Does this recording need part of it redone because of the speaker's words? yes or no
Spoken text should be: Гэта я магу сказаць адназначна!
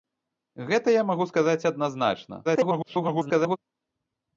yes